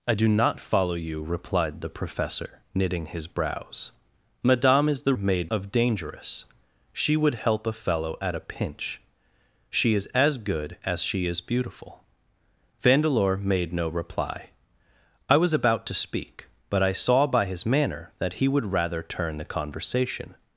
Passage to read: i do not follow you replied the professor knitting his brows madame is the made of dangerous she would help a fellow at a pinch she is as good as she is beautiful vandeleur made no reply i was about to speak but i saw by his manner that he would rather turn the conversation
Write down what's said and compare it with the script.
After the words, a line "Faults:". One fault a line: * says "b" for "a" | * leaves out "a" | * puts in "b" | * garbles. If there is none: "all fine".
i do not follow you replied the professor knitting his brows madame is the made of dangerous she would help a fellow at a pinch she is as good as she is beautiful vandeleur made no reply i was about to speak but i saw by his manner that he would rather turn the conversation
Faults:
all fine